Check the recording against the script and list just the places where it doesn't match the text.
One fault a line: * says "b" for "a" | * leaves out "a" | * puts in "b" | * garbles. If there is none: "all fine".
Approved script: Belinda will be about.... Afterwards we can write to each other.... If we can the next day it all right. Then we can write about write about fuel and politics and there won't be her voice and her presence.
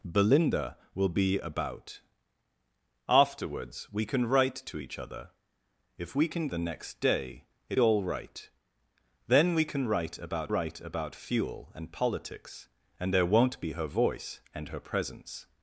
all fine